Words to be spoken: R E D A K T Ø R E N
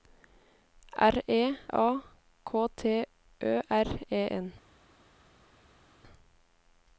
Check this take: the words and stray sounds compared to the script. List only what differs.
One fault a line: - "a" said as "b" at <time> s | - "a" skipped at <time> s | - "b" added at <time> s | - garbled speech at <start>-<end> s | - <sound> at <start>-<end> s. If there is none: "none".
- "D" skipped at 1.6 s